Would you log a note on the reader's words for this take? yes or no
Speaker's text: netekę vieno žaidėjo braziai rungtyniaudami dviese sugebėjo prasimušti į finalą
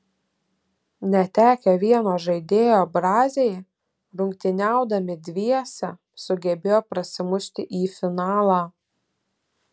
no